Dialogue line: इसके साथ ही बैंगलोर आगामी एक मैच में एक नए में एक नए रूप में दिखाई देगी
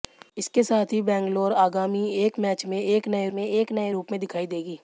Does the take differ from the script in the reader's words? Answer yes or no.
no